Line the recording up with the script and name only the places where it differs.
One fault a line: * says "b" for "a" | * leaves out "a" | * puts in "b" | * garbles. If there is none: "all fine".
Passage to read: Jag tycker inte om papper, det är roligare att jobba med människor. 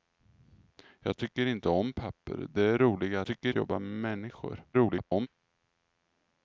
* says "tycker" for "att"
* garbles